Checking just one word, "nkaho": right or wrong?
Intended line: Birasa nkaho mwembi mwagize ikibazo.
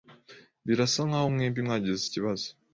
right